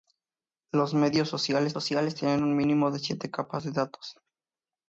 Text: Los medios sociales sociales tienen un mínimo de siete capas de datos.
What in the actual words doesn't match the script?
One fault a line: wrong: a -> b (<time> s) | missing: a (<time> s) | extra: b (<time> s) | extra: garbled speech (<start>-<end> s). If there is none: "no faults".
no faults